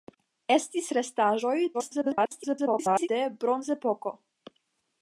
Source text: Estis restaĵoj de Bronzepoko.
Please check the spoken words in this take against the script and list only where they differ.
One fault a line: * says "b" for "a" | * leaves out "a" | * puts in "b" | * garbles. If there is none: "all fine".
* garbles